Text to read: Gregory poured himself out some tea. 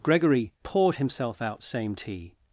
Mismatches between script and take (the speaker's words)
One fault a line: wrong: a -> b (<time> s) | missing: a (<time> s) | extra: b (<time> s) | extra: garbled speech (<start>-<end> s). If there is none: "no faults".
wrong: some -> same (1.6 s)